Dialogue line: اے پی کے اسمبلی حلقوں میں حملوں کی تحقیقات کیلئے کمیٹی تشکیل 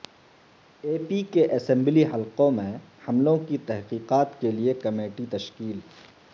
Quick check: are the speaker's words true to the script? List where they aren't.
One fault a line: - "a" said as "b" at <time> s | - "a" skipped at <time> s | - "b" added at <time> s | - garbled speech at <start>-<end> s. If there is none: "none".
none